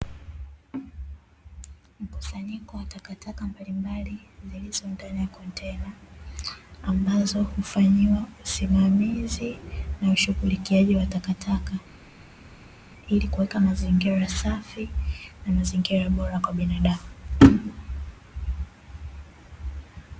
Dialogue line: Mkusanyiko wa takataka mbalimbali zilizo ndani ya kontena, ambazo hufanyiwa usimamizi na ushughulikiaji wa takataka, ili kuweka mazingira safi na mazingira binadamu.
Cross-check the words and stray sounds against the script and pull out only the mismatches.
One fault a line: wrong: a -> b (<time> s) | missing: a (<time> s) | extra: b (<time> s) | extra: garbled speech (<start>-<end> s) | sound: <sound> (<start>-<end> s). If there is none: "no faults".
extra: bora kwa (16.1 s)